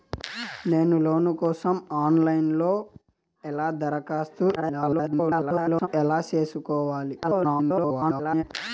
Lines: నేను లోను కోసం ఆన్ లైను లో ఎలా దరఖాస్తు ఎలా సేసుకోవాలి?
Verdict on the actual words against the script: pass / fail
fail